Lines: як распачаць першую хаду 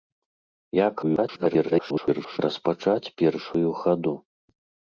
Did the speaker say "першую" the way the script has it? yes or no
yes